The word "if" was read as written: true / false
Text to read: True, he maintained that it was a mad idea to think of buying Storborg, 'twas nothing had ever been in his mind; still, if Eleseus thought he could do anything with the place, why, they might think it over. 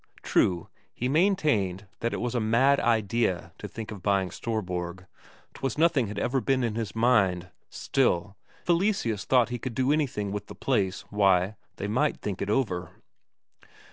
false